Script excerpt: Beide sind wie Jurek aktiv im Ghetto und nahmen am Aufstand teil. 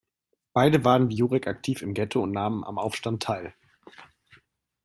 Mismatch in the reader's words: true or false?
true